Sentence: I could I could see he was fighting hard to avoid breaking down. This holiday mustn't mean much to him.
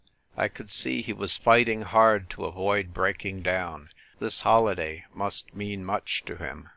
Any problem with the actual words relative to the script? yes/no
yes